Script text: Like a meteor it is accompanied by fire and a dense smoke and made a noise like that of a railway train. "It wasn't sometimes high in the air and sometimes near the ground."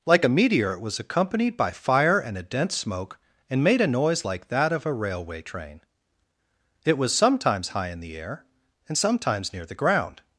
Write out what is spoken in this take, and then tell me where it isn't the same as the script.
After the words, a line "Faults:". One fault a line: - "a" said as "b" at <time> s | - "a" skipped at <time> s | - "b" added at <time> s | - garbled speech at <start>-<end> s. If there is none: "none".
Like a meteor it was accompanied by fire and a dense smoke and made a noise like that of a railway train. "It was sometimes high in the air and sometimes near the ground."
Faults:
- "is" said as "was" at 0.8 s
- "wasn't" said as "was" at 7.0 s